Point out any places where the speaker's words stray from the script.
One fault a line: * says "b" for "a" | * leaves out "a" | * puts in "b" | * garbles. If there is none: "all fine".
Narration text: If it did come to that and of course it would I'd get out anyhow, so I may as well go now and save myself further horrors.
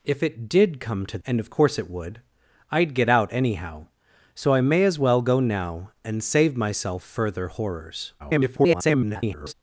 * leaves out "that"
* garbles